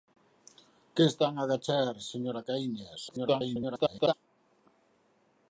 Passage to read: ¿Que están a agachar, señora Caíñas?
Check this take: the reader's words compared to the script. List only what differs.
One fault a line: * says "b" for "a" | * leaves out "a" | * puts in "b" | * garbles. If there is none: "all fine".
* garbles